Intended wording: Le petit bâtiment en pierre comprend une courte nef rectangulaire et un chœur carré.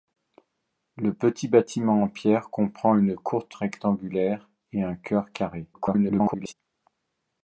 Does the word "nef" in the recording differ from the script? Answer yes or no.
yes